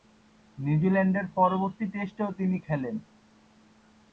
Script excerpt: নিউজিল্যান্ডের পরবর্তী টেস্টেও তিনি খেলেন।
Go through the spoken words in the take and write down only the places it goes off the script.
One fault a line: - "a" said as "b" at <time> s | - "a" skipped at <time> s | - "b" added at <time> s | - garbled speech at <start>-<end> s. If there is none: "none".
none